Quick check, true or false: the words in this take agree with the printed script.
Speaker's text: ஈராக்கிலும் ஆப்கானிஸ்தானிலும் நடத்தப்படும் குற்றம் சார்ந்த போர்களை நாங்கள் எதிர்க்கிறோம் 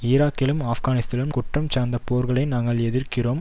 false